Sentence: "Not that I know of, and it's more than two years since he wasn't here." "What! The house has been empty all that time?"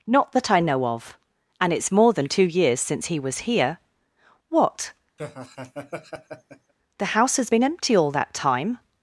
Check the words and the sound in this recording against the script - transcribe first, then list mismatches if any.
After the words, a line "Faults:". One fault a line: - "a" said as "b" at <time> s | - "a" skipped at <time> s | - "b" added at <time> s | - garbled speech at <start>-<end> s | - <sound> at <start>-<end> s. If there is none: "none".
"Not that I know of, and it's more than two years since he was here." "What! The house has been empty all that time?"
Faults:
- "wasn't" said as "was" at 3.2 s
- laugh at 5.2-6.7 s